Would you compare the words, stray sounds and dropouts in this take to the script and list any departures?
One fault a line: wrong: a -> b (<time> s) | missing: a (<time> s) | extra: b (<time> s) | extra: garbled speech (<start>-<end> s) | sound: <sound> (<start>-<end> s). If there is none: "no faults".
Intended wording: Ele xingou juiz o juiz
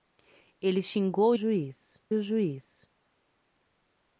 no faults